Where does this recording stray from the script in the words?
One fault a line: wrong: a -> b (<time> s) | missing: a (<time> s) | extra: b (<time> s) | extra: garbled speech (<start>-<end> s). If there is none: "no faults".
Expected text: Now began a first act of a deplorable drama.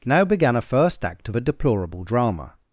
no faults